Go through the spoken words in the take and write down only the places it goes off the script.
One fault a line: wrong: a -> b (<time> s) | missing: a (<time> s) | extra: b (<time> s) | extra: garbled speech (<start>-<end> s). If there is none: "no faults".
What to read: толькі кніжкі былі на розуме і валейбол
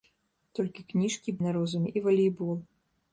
missing: былі (1.3 s)